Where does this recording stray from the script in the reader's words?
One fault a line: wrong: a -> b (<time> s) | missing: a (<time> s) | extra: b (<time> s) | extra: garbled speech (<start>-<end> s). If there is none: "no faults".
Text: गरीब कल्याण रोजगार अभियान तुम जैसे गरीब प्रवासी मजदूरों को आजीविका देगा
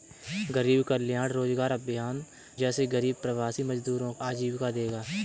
missing: तुम (2.2 s)
missing: को (4.1 s)